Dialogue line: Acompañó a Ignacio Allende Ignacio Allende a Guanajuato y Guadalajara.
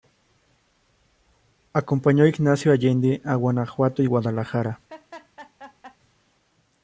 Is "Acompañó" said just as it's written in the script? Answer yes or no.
yes